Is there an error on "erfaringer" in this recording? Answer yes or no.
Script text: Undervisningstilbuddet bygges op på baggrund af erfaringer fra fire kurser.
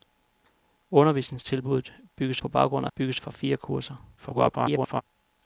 yes